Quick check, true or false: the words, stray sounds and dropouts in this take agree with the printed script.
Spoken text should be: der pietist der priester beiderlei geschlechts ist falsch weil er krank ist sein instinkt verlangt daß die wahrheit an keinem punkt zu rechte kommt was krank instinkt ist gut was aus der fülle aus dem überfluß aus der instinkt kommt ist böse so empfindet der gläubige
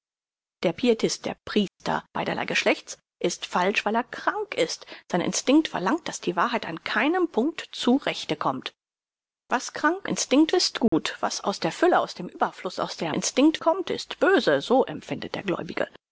false